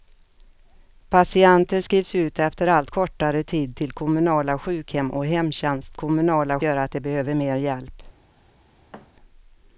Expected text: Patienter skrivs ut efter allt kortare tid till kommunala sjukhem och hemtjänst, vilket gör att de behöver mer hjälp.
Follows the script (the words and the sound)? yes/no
no